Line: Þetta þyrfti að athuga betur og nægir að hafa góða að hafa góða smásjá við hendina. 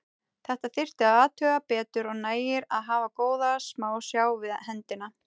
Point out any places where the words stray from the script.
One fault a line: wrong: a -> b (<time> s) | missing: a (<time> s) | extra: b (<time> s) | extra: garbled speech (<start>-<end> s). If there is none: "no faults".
missing: að hafa góða (3.5 s)